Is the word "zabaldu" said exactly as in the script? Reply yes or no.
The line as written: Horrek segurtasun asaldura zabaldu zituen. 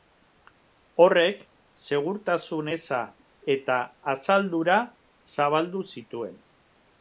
yes